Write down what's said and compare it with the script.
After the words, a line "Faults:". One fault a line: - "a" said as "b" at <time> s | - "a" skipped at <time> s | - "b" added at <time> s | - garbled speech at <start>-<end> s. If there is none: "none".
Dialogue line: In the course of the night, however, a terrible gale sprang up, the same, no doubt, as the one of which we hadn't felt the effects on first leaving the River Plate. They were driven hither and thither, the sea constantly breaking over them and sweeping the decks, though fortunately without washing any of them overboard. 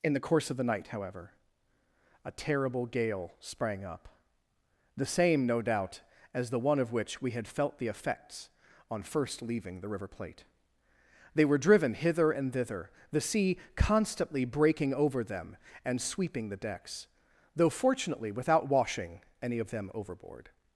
In the course of the night, however, a terrible gale sprang up, the same, no doubt, as the one of which we had felt the effects on first leaving the River Plate. They were driven hither and thither, the sea constantly breaking over them and sweeping the decks, though fortunately without washing any of them overboard.
Faults:
- "hadn't" said as "had" at 7.3 s